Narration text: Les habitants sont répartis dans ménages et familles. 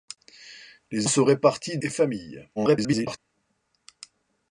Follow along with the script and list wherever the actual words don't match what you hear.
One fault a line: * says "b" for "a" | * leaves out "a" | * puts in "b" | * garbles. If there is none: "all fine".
* leaves out "habitants"
* leaves out "dans ménages"
* garbles